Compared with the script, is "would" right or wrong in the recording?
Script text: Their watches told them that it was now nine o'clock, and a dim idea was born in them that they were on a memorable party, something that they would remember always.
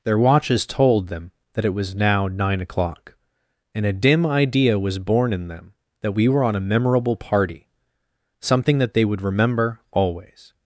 right